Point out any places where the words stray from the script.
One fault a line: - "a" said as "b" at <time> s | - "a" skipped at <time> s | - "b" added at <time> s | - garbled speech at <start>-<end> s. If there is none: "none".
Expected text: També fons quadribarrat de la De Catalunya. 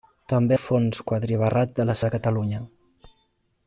none